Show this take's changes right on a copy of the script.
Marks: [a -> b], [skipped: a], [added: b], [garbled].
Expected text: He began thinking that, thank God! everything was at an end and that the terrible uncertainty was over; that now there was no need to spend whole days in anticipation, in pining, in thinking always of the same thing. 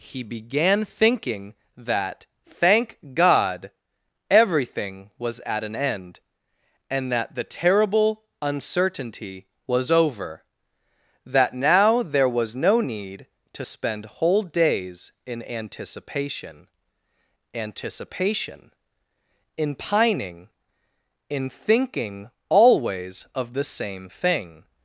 He began thinking that, thank God! everything was at an end and that the terrible uncertainty was over; that now there was no need to spend whole days in anticipation, [added: anticipation] in pining, in thinking always of the same thing.